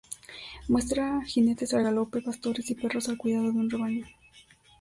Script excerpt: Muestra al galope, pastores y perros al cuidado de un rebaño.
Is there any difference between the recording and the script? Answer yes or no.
yes